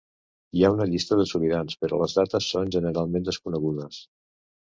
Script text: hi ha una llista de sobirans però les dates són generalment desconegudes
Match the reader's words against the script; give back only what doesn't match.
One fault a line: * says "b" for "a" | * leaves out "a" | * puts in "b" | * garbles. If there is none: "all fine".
all fine